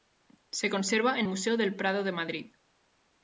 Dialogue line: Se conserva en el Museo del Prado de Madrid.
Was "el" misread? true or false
true